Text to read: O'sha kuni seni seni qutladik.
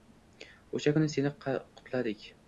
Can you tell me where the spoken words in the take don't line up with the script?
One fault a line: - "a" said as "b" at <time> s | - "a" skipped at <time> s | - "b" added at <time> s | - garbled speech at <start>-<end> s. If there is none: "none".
- "seni" skipped at 1.3 s